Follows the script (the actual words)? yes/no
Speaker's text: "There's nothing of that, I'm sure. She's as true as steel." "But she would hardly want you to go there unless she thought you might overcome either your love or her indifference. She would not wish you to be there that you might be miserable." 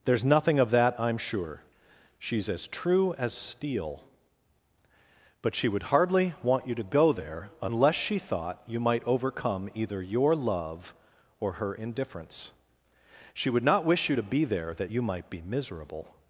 yes